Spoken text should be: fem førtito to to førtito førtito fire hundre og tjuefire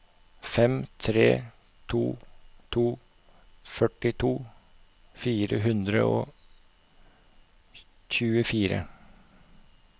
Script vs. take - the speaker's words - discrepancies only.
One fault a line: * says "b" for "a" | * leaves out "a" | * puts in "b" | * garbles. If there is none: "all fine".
* says "tre" for "førtito"
* leaves out "førtito"